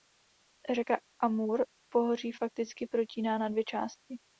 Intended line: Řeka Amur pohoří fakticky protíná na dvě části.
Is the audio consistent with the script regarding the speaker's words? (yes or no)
yes